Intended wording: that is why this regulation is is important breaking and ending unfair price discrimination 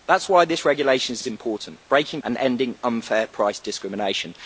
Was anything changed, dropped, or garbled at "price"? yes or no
no